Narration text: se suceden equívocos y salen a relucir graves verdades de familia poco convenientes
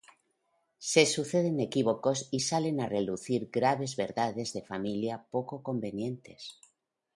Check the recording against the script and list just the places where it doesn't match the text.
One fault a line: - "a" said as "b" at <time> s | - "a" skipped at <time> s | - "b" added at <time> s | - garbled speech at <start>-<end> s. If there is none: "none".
none